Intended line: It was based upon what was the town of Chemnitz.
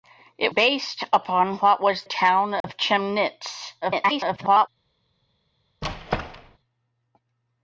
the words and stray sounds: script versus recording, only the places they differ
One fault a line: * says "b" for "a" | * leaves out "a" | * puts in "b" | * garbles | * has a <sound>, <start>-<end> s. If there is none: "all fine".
* leaves out "was"
* leaves out "the"
* has a dropout, 2.6-2.6 s
* garbles
* has a squeak, 5.8-6.6 s